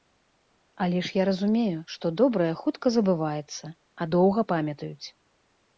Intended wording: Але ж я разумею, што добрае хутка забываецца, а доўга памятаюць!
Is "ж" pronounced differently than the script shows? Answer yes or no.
no